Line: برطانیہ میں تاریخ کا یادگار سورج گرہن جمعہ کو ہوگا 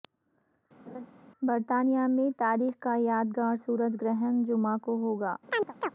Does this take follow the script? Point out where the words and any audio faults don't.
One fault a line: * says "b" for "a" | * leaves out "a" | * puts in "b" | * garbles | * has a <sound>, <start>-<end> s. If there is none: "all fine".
* has a laugh, 0.9-1.1 s
* has a chirp, 5.5-5.9 s